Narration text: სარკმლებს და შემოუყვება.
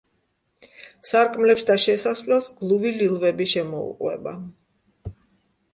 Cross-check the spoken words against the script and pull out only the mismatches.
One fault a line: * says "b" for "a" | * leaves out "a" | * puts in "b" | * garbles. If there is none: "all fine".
* puts in "შესასვლელს გლუვი ლილვები"